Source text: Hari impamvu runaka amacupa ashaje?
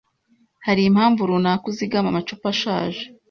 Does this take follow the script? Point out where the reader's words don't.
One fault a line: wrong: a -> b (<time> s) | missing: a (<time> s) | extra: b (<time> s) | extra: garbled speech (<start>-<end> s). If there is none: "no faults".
extra: uzigama (1.7 s)